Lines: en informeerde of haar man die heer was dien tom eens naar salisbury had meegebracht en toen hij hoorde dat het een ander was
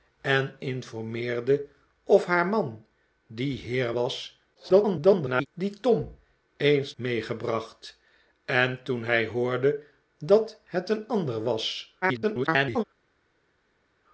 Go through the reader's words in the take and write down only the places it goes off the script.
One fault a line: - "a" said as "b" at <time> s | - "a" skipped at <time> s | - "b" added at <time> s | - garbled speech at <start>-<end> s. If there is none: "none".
- garbled speech at 4.5-5.5 s
- "naar salisbury had" skipped at 6.9 s
- garbled speech at 12.0-12.8 s